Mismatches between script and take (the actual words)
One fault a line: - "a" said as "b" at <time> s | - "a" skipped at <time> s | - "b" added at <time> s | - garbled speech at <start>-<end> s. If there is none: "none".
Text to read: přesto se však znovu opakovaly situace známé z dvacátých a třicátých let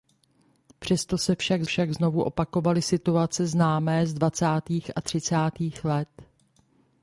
- "však" added at 1.6 s